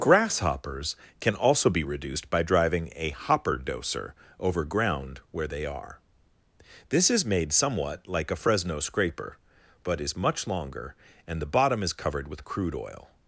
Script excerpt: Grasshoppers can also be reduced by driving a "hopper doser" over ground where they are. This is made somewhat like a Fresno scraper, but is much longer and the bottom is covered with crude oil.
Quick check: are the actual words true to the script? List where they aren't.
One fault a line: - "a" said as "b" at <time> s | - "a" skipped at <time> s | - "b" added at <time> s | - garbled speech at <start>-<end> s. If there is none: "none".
none